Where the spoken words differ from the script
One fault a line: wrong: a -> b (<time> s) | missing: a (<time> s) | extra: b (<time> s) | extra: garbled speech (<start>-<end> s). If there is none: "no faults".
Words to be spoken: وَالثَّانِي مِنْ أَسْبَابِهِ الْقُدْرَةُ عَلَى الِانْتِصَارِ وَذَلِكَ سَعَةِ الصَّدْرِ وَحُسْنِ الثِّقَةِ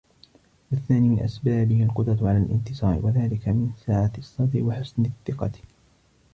extra: مِنْ (3.5 s)